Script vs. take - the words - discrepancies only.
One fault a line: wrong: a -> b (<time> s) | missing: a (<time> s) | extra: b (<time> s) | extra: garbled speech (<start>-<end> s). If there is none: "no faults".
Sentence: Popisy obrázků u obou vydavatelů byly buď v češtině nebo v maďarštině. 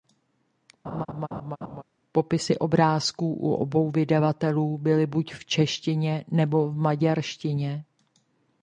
no faults